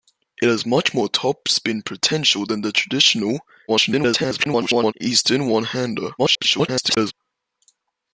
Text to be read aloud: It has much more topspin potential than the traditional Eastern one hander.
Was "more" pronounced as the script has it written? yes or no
yes